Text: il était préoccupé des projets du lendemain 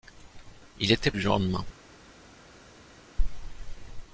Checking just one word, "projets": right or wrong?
wrong